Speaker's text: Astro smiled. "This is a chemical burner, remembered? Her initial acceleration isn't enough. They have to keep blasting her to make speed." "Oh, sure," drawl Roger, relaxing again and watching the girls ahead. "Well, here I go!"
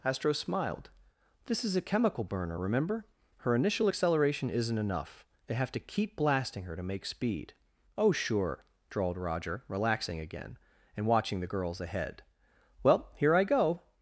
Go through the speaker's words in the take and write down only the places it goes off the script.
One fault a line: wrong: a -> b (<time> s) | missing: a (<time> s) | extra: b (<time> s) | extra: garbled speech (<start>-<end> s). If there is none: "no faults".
wrong: remembered -> remember (2.6 s)
wrong: drawl -> drawled (8.9 s)